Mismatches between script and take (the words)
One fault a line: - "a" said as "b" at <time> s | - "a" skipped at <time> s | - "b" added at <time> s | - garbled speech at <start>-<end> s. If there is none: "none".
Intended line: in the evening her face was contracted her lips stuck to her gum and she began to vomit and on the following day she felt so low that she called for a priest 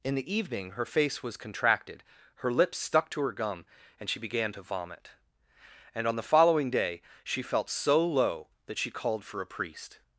none